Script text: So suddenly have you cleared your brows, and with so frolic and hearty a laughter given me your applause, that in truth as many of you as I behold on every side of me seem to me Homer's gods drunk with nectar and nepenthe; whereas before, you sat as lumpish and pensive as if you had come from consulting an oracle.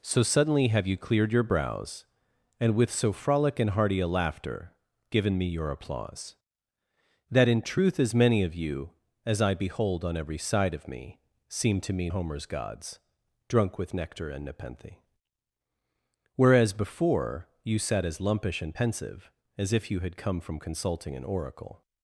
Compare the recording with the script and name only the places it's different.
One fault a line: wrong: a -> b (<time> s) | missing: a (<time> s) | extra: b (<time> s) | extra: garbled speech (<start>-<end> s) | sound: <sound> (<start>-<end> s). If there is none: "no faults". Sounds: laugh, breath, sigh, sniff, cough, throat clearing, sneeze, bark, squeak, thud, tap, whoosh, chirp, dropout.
no faults